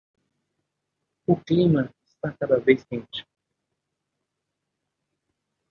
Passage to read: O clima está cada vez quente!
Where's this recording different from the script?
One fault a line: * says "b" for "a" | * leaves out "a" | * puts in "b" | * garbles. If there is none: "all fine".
all fine